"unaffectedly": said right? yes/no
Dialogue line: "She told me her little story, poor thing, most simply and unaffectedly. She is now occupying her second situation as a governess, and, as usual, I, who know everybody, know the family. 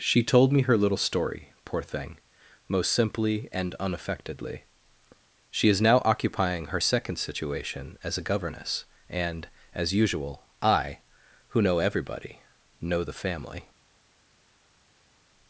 yes